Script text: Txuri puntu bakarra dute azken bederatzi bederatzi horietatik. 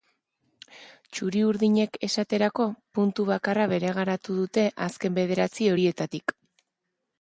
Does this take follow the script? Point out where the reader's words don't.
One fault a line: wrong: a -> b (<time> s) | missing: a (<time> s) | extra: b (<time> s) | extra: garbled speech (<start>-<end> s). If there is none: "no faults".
extra: urdinek esaterako (1.5 s)
extra: bereganatu (3.8 s)
missing: bederatzi (5.7 s)